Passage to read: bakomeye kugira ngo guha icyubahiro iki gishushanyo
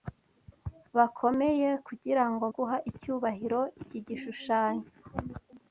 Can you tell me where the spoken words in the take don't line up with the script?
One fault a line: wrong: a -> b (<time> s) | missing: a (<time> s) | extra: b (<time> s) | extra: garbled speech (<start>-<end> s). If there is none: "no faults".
no faults